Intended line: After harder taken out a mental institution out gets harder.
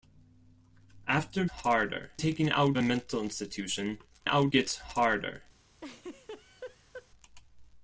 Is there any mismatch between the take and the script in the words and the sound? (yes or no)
yes